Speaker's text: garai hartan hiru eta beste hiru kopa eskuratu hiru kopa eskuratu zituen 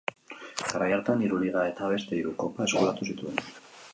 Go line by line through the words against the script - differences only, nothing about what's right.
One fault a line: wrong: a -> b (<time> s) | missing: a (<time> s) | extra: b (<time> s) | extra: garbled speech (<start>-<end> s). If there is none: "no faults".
extra: liga (1.4 s)
missing: hiru kopa eskuratu (3.1 s)